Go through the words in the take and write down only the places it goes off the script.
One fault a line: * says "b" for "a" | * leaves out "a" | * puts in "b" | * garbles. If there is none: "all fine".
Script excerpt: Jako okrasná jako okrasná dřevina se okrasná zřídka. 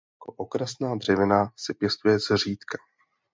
* leaves out "jako okrasná"
* says "pěstuje" for "okrasná"